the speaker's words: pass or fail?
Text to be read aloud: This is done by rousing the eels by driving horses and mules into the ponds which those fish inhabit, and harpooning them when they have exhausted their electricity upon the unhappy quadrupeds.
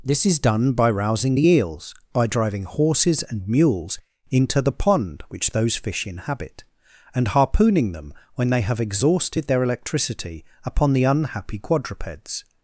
fail